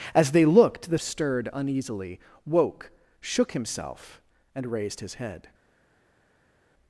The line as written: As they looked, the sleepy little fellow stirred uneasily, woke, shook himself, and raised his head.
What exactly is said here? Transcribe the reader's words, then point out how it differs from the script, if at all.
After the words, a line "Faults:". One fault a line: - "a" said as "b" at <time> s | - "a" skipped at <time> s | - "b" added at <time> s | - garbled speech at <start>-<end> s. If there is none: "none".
As they looked, the stirred uneasily, woke, shook himself, and raised his head.
Faults:
- "sleepy little fellow" skipped at 1.0 s